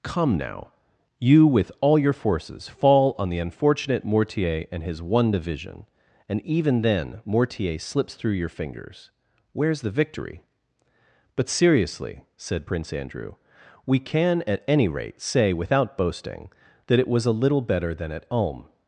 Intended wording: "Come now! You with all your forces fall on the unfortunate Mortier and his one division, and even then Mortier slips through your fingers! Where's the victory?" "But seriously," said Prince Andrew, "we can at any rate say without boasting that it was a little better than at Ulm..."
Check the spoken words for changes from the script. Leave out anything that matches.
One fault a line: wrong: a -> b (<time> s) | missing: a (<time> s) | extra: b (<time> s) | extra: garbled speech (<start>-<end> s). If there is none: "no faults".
no faults